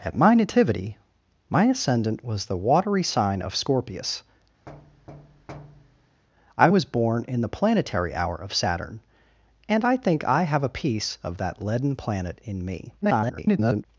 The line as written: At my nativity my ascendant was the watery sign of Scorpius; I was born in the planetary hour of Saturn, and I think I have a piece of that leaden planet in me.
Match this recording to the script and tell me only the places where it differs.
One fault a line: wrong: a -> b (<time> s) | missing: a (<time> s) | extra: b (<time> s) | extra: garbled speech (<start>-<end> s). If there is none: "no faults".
extra: garbled speech (13.0-13.9 s)